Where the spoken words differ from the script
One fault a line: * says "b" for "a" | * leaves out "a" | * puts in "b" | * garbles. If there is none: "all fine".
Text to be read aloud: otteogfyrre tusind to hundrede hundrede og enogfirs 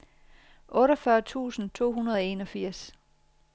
* leaves out "hundrede"